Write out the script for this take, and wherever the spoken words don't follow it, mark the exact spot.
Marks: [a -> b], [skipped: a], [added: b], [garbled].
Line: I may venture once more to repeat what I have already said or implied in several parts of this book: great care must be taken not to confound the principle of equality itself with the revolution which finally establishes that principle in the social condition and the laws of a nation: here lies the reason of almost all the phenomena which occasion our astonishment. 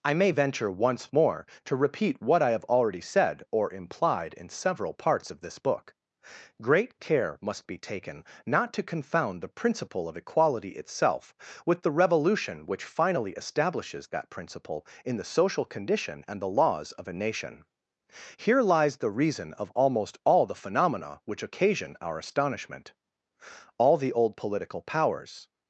I may venture once more to repeat what I have already said or implied in several parts of this book: great care must be taken not to confound the principle of equality itself with the revolution which finally establishes that principle in the social condition and the laws of a nation: here lies the reason of almost all the phenomena which occasion our astonishment. [added: All the old political powers]